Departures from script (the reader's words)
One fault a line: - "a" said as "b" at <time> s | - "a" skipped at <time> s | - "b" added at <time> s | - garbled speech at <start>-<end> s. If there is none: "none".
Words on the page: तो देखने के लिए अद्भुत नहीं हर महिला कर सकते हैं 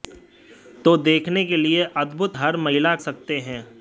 - "नहीं" skipped at 2.4 s
- "कर" skipped at 3.0 s